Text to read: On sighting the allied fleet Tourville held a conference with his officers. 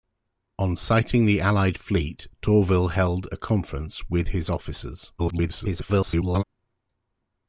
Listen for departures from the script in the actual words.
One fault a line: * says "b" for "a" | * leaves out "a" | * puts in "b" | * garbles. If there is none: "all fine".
* garbles